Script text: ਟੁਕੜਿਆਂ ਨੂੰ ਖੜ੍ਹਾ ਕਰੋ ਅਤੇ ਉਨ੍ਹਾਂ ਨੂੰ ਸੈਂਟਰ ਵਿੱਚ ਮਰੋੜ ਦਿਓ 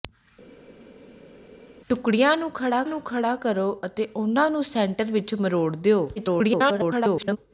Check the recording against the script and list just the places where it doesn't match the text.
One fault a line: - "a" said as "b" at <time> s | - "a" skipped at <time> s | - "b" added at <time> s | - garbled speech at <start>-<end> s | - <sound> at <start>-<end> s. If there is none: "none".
- "ਨੂੰ ਖੜ੍ਹਾ" added at 2.9 s
- garbled speech at 6.2-7.4 s